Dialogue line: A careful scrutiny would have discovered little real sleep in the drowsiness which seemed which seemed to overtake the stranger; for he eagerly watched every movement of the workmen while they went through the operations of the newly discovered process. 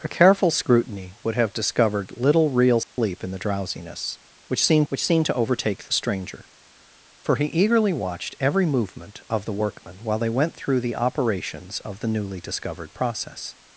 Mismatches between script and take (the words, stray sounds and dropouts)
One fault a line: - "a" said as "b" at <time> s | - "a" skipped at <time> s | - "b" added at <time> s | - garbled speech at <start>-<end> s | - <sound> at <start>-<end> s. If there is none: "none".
- dropout at 2.8-3.0 s